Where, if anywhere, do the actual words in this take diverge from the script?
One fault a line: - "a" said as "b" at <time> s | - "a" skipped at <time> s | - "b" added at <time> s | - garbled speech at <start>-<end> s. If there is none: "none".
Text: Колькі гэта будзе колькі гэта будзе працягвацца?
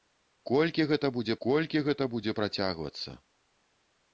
none